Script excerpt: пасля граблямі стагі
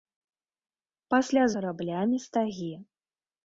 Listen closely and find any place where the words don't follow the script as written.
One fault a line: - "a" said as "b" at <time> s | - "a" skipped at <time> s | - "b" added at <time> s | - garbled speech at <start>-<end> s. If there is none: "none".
none